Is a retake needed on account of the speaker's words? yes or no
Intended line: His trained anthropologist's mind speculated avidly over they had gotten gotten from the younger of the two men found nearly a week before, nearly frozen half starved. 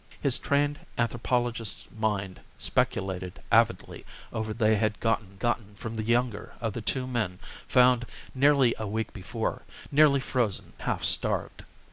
no